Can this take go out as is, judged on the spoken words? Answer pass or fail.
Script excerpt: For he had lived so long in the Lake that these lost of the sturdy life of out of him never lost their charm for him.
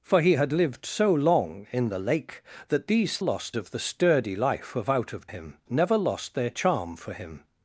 pass